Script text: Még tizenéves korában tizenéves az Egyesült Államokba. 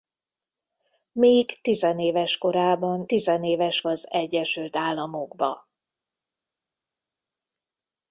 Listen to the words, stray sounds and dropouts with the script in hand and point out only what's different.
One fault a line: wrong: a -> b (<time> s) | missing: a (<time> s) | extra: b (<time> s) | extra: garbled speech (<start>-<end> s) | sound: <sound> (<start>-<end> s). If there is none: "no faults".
no faults